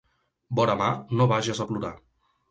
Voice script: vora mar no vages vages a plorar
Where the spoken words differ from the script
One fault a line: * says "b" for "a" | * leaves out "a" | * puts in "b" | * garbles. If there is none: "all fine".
* leaves out "vages"